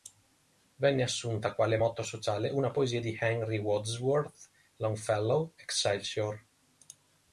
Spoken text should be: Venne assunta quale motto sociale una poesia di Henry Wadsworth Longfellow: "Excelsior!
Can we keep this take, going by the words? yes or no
yes